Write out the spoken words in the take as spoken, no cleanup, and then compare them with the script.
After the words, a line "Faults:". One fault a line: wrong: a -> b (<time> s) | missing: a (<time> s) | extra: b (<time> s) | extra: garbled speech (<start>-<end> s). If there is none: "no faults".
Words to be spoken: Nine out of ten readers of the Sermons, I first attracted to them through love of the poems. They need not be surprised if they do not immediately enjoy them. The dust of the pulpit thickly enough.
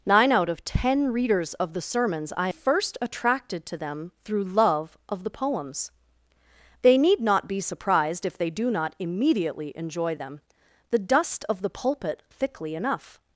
Nine out of ten readers of the Sermons, I first attracted to them through love of the poems. They need not be surprised if they do not immediately enjoy them. The dust of the pulpit thickly enough.
Faults:
no faults